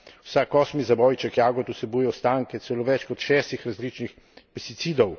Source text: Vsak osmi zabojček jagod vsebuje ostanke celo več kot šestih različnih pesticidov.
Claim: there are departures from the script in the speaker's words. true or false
false